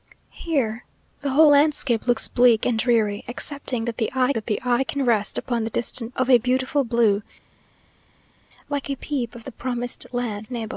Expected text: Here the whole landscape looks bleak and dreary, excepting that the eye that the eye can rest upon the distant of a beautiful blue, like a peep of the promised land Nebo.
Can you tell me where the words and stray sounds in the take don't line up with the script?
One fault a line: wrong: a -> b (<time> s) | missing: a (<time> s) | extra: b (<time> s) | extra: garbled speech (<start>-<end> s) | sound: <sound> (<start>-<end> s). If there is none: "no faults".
no faults